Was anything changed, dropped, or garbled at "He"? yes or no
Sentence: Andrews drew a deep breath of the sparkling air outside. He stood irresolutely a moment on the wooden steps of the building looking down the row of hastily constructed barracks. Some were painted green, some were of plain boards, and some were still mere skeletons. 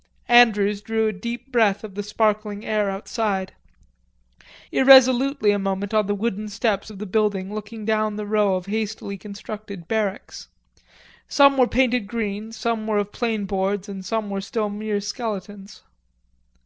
yes